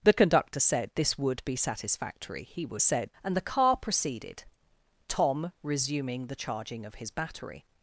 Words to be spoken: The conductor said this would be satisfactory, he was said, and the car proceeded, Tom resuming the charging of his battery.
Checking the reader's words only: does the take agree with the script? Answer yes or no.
yes